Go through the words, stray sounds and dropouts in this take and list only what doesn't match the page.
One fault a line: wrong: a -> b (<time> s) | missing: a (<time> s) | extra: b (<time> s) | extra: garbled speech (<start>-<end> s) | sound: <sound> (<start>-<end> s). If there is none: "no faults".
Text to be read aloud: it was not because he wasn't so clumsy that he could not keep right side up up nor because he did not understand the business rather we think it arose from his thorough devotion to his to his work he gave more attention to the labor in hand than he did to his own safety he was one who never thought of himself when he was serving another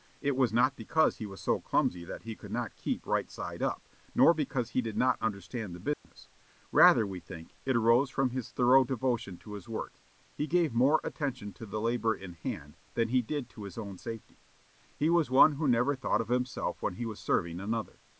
wrong: wasn't -> was (1.3 s)
missing: up (3.9 s)
sound: dropout (5.9-6.0 s)
missing: to his (9.7 s)